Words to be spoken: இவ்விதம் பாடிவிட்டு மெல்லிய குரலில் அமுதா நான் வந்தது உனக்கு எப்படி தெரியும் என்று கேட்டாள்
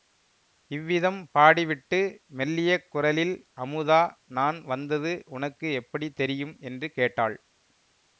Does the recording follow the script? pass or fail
pass